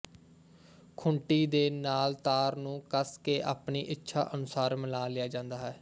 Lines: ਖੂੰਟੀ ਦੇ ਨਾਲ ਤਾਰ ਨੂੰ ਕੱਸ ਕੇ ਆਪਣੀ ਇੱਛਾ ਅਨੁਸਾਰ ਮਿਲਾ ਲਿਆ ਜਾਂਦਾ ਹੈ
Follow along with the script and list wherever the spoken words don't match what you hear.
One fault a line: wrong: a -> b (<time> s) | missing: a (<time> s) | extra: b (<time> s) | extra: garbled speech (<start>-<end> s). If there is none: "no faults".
no faults